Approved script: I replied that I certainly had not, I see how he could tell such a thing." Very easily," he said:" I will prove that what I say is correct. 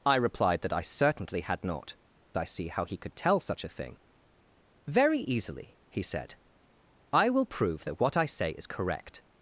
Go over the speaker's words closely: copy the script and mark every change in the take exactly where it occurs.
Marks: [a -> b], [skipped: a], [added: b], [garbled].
I replied that I certainly had not, I see how he could tell such a thing." Very easily," he said:" I will prove that what I say is correct.